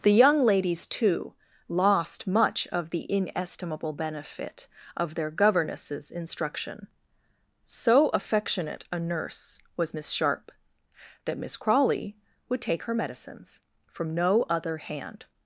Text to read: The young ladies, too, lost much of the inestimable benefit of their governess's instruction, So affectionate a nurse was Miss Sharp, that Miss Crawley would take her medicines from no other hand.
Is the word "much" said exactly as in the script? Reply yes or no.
yes